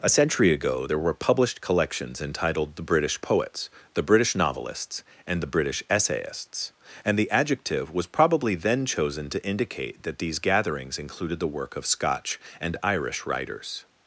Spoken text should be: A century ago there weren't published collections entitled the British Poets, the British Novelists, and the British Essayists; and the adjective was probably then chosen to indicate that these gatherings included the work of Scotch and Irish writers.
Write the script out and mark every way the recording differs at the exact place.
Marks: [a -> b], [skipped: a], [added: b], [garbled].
A century ago there [weren't -> were] published collections entitled the British Poets, the British Novelists, and the British Essayists; and the adjective was probably then chosen to indicate that these gatherings included the work of Scotch and Irish writers.